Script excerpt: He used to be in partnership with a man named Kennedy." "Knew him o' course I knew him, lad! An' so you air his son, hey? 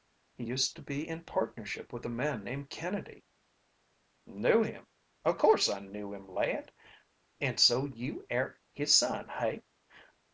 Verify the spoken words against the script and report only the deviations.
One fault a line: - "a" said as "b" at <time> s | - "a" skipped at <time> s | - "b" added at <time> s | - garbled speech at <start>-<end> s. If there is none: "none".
none